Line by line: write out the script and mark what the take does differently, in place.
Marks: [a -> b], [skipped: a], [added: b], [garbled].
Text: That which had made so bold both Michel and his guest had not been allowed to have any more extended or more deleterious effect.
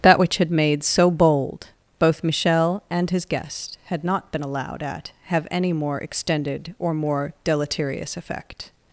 That which had made so bold both Michel and his guest had not been allowed [to -> at] have any more extended or more deleterious effect.